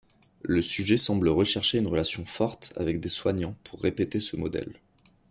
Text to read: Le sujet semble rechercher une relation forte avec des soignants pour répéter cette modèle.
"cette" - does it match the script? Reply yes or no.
no